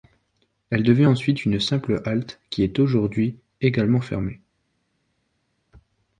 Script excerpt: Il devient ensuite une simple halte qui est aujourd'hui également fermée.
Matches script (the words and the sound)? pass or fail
fail